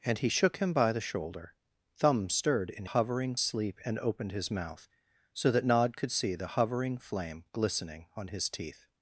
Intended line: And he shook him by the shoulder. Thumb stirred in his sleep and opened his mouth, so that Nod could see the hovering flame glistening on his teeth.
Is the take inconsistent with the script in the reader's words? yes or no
yes